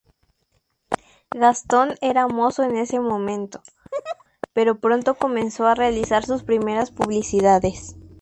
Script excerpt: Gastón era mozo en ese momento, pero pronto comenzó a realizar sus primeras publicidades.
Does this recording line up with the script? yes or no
yes